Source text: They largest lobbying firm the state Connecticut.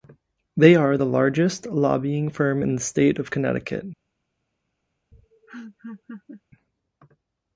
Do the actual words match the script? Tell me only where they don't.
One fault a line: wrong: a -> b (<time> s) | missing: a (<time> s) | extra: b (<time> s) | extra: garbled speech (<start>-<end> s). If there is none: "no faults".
extra: are the (0.8 s)
extra: in (2.6 s)
extra: of (3.2 s)